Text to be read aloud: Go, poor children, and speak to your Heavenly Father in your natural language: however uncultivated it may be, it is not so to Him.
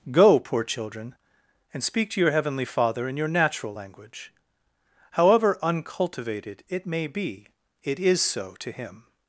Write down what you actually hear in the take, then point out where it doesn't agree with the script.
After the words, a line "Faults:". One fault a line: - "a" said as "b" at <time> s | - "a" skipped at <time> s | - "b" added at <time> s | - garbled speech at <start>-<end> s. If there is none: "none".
Go, poor children, and speak to your Heavenly Father in your natural language: however uncultivated it may be, it is so to Him.
Faults:
- "not" skipped at 8.2 s